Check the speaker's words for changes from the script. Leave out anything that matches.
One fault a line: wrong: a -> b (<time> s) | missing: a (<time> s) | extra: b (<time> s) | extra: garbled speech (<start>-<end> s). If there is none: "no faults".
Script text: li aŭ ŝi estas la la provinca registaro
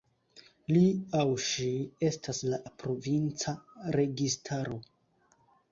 no faults